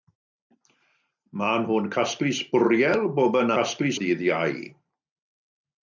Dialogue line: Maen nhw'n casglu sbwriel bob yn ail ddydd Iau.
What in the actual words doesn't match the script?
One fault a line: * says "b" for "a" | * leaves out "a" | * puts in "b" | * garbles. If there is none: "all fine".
* says "casglu" for "ail"